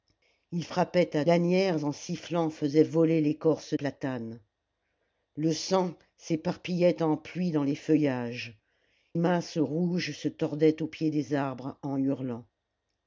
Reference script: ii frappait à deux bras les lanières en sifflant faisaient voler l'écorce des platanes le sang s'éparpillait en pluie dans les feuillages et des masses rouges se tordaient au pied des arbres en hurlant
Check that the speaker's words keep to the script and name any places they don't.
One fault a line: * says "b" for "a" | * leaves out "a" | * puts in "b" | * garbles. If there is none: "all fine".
* leaves out "deux bras les"
* leaves out "des"
* leaves out "et des"